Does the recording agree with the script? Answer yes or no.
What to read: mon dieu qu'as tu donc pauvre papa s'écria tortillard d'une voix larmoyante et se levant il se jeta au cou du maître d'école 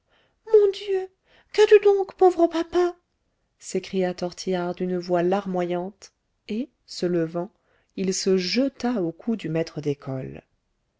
yes